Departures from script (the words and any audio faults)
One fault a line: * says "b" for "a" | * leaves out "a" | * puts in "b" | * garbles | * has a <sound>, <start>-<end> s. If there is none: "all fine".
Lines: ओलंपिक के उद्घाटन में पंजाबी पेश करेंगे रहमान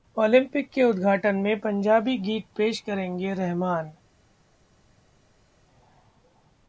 * puts in "गीत"